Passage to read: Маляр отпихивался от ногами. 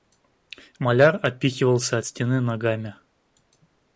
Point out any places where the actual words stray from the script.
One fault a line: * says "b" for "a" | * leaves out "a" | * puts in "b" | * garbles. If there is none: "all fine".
* puts in "стены"